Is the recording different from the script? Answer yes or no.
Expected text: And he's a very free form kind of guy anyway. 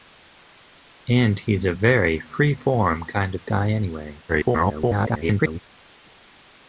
yes